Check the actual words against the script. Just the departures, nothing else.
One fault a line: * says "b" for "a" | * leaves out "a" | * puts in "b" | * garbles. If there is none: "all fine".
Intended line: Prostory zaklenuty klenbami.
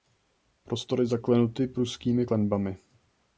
* puts in "pruskými"